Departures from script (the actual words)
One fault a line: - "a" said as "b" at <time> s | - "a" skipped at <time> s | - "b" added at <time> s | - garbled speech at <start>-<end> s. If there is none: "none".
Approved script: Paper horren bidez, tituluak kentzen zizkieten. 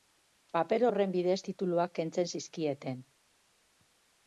none